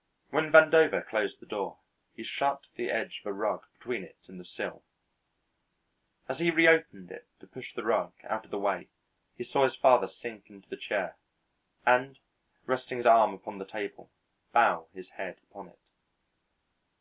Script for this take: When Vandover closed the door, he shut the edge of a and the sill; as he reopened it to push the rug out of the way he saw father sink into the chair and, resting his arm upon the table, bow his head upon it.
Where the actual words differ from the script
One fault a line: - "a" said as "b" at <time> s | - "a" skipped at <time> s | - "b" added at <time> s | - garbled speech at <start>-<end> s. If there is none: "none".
- "rug between it" added at 3.3 s
- "his" added at 9.6 s